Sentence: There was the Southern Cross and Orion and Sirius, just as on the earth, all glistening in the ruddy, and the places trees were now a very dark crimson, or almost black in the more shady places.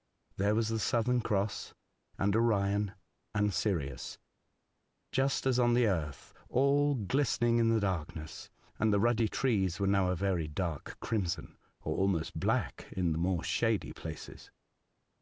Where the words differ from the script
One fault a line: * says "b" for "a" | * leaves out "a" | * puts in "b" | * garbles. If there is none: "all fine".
* says "darkness" for "ruddy"
* says "ruddy" for "places"